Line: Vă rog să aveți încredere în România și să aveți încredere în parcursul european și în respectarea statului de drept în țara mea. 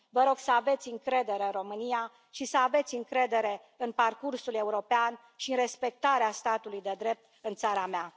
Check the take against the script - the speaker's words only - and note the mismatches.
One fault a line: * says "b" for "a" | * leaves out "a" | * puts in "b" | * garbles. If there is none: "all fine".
all fine